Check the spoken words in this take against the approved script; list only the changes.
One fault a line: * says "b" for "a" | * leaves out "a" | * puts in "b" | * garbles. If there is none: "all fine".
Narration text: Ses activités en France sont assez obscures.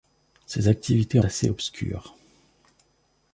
* leaves out "en France sont"